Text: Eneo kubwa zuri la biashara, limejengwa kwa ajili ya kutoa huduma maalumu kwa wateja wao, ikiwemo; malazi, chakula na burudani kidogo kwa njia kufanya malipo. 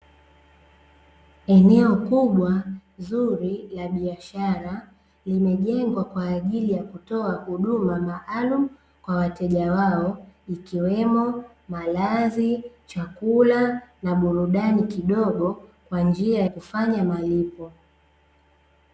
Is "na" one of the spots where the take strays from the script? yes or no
no